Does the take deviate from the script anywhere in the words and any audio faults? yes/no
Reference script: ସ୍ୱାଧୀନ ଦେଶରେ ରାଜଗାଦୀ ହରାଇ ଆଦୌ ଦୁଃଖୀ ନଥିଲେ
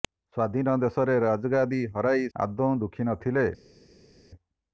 no